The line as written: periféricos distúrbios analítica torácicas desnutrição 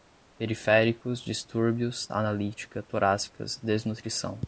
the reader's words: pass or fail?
pass